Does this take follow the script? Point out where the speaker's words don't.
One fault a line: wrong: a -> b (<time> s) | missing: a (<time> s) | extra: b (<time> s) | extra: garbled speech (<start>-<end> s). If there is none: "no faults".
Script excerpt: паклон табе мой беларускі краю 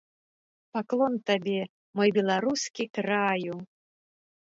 no faults